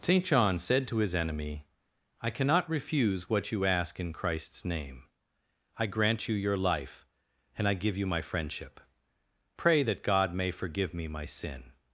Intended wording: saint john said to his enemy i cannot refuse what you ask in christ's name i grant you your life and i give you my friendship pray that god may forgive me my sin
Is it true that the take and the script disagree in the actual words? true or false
false